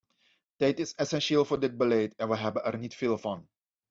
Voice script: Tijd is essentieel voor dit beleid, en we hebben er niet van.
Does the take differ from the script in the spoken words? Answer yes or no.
yes